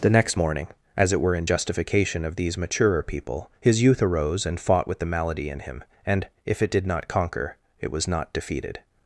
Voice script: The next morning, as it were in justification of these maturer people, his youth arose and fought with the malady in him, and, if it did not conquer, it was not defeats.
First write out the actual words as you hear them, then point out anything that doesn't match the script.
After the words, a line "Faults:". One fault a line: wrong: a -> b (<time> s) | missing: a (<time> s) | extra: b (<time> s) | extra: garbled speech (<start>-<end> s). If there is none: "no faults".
The next morning, as it were in justification of these maturer people, his youth arose and fought with the malady in him, and, if it did not conquer, it was not defeated.
Faults:
wrong: defeats -> defeated (8.3 s)